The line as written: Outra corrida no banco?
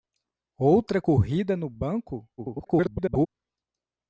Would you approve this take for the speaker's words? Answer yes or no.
no